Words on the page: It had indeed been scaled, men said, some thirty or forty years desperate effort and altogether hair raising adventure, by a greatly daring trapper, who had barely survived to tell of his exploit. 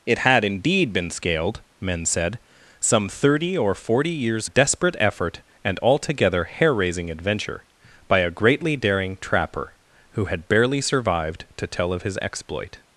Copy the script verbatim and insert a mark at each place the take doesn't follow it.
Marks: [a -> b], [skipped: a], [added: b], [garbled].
It had indeed been scaled, men said, some thirty or forty years desperate effort and altogether hair raising adventure, by a greatly daring trapper, who had barely survived to tell of his exploit.